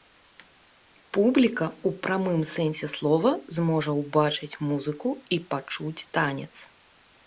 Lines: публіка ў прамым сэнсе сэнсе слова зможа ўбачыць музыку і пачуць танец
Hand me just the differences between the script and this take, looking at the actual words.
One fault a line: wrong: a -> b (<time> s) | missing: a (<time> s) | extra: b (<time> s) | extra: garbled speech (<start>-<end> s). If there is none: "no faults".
missing: сэнсе (2.9 s)